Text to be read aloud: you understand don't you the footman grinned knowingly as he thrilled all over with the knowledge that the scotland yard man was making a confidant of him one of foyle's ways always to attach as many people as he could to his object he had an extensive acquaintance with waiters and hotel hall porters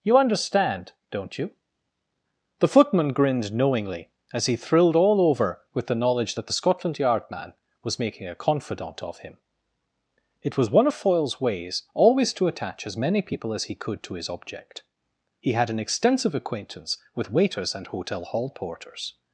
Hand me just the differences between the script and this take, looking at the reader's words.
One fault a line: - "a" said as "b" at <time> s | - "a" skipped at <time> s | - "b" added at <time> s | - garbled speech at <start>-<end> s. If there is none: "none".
- "it was" added at 10.4 s